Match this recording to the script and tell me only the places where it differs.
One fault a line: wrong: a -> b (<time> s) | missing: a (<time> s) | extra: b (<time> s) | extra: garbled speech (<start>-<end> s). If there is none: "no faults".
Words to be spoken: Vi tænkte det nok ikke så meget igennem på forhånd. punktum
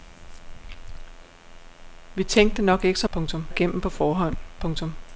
wrong: meget -> punktum (3.1 s)